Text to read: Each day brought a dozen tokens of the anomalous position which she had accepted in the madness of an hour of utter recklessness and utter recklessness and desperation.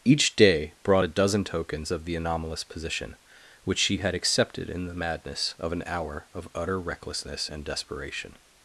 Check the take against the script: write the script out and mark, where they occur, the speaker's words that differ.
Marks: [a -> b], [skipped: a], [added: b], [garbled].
Each day brought a dozen tokens of the anomalous position which she had accepted in the madness of an hour of utter recklessness and [skipped: utter recklessness and] desperation.